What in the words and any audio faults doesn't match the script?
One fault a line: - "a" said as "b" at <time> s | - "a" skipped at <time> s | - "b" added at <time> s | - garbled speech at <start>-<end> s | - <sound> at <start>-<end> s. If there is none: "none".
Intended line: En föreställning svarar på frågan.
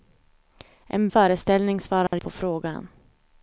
- dropout at 2.1-2.1 s